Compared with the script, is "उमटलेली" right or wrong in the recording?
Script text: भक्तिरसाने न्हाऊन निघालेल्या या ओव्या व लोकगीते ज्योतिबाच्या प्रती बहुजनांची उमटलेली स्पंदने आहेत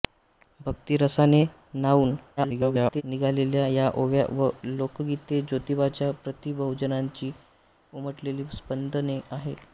right